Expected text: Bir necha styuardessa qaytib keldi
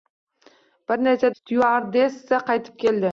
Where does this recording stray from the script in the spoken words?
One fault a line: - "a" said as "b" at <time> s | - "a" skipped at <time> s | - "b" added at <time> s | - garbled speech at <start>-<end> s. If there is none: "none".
none